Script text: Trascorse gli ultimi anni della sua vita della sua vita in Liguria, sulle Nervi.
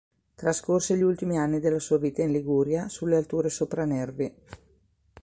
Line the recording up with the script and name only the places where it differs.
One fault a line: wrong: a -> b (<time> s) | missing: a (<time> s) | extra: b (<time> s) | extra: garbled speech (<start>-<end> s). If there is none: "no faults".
missing: della sua vita (2.2 s)
extra: alture sopra (3.2 s)